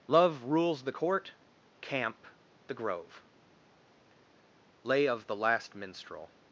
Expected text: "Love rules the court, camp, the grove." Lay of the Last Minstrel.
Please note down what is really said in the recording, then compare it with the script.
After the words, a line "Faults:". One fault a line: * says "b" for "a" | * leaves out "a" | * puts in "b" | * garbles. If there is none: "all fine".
"Love rules the court, camp, the grove." Lay of the Last Minstrel.
Faults:
all fine